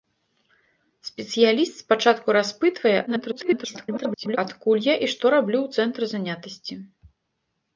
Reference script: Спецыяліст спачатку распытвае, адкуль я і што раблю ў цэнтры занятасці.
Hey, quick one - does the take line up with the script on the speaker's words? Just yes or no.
no